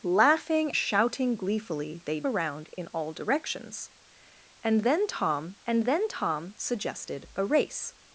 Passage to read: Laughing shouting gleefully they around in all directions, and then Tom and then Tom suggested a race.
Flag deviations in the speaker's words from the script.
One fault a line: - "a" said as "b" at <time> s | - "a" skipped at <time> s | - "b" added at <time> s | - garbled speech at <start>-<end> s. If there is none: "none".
none